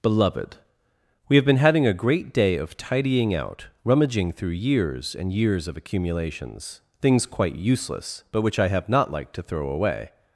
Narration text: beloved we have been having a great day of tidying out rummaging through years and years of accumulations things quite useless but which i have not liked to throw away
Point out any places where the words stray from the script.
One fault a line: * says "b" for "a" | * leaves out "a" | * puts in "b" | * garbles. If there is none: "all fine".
all fine